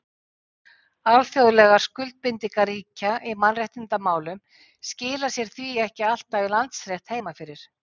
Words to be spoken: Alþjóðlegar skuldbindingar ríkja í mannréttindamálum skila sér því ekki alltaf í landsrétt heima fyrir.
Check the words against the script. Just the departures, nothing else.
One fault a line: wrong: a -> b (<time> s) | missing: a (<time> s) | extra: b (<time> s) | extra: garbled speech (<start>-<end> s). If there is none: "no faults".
no faults